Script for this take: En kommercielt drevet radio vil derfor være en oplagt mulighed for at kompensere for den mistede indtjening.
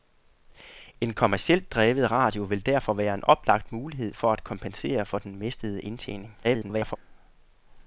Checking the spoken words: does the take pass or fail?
fail